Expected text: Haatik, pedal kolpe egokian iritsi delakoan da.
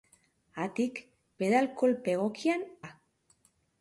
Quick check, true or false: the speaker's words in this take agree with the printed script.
false